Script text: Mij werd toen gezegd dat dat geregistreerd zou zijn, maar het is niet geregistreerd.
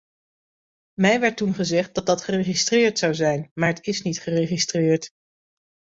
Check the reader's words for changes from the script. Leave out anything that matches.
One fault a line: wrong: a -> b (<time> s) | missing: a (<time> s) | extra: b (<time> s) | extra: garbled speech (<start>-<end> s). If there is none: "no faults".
no faults